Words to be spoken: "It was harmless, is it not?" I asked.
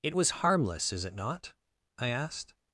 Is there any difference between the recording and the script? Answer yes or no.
no